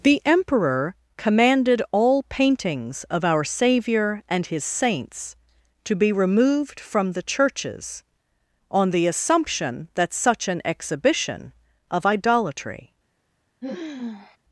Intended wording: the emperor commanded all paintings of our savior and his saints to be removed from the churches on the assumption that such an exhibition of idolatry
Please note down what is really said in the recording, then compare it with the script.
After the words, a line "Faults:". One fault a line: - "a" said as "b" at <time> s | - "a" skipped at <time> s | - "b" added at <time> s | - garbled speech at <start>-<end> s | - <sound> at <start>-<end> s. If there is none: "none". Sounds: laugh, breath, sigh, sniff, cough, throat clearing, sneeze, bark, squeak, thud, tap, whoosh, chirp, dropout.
the emperor commanded all paintings of our savior and his saints to be removed from the churches on the assumption that such an exhibition of idolatry
Faults:
- sigh at 13.6-14.4 s